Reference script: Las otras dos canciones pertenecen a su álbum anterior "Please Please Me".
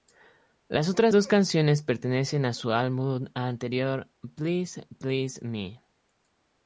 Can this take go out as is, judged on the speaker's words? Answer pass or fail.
pass